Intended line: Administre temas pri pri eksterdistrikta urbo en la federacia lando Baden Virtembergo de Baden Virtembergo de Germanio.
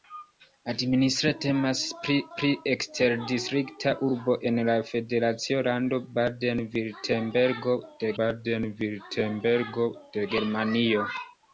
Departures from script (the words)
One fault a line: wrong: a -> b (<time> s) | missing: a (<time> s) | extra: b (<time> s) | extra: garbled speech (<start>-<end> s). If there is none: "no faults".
no faults